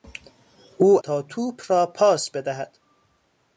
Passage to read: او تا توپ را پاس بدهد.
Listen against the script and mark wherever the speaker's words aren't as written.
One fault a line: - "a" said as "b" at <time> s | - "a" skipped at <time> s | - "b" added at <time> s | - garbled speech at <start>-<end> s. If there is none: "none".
none